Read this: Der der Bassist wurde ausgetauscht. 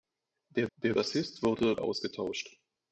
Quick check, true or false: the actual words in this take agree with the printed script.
true